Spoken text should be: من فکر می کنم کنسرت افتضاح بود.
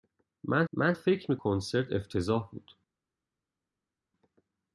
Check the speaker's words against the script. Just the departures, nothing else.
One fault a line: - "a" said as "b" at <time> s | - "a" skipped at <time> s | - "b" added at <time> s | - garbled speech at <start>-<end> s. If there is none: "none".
- "من" added at 0.7 s
- "کنم" skipped at 1.4 s